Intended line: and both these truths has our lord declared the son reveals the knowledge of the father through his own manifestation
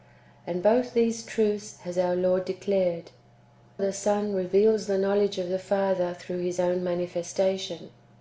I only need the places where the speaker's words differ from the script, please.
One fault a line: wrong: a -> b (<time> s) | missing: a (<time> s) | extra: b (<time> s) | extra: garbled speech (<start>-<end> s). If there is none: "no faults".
no faults